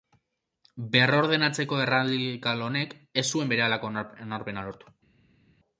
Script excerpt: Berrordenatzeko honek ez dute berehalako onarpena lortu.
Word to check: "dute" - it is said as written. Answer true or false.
false